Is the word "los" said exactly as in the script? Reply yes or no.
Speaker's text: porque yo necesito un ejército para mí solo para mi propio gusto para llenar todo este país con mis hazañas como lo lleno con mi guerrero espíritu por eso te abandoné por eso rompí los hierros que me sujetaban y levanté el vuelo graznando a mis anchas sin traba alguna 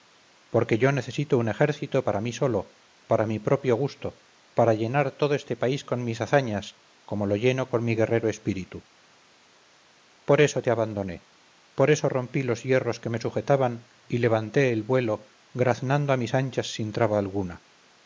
yes